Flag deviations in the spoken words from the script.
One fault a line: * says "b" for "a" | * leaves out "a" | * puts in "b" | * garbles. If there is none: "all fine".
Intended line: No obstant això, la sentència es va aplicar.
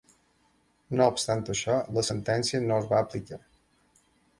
* puts in "no"